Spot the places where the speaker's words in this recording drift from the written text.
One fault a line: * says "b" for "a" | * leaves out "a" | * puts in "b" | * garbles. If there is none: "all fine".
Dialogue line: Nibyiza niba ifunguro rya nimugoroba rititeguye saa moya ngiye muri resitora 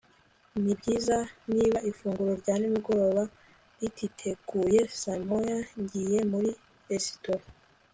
all fine